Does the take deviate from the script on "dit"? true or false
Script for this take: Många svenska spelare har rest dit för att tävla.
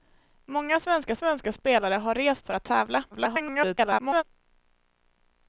true